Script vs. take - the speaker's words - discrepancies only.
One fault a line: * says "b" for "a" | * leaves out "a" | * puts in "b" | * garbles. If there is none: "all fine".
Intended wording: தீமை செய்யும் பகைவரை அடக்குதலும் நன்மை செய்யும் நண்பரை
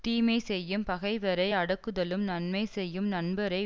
all fine